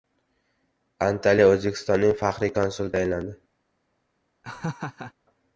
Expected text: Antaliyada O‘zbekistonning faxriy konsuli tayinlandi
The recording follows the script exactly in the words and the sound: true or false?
false